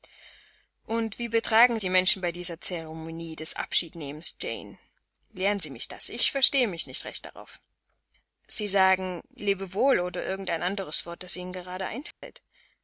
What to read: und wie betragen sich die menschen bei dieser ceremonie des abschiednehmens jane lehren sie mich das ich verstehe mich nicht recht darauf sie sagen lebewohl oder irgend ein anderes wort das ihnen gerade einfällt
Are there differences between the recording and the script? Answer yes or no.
yes